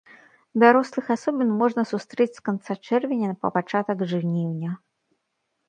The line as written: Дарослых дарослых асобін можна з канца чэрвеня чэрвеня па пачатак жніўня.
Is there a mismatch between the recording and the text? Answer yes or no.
yes